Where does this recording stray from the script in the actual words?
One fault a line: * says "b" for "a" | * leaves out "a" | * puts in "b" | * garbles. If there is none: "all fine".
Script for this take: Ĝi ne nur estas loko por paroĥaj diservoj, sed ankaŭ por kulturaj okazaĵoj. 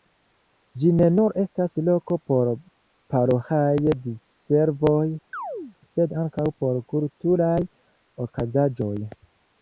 all fine